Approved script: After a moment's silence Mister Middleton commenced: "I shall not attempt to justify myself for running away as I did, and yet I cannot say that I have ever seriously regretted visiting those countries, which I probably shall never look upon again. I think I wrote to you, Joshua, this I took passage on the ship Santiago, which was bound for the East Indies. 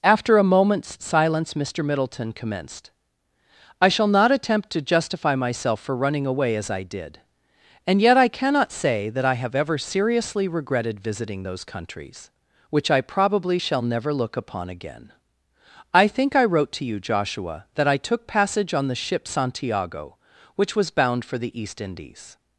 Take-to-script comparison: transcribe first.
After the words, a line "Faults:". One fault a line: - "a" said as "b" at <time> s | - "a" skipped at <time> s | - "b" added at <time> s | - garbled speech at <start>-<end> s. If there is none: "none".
After a moment's silence Mister Middleton commenced: "I shall not attempt to justify myself for running away as I did, and yet I cannot say that I have ever seriously regretted visiting those countries, which I probably shall never look upon again. I think I wrote to you, Joshua, that I took passage on the ship Santiago, which was bound for the East Indies.
Faults:
- "this" said as "that" at 17.7 s